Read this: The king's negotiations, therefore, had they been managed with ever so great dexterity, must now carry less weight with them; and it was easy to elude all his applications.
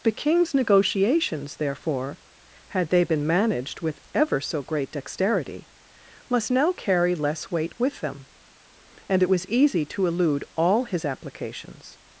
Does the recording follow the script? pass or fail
pass